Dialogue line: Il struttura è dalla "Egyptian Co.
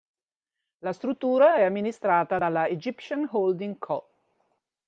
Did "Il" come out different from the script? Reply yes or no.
yes